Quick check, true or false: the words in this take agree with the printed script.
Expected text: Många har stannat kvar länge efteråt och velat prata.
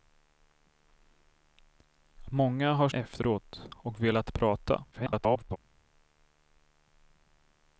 false